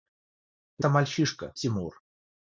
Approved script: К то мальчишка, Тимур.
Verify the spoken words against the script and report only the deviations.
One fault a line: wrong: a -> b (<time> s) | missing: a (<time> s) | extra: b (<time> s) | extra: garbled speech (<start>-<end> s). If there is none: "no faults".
no faults